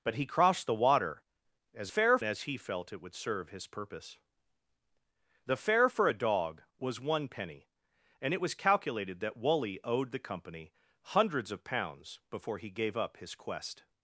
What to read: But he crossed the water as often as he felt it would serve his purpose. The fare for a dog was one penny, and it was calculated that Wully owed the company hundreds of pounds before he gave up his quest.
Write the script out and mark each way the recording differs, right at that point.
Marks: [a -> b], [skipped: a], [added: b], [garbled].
But he crossed the water as [often -> fare] as he felt it would serve his purpose. The fare for a dog was one penny, and it was calculated that Wully owed the company hundreds of pounds before he gave up his quest.